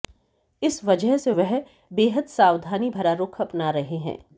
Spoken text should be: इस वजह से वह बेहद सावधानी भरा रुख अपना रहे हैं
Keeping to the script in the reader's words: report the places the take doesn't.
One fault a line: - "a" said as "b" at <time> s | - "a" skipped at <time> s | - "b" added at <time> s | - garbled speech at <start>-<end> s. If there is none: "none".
none